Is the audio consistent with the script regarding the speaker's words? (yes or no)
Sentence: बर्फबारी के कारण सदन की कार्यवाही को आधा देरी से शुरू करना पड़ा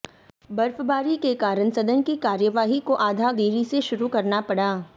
yes